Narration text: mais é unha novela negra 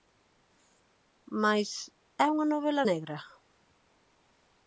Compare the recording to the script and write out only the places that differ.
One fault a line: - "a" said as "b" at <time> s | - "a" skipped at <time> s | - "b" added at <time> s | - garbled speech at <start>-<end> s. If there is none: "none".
none